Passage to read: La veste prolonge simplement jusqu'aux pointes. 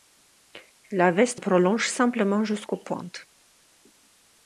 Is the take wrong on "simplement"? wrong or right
right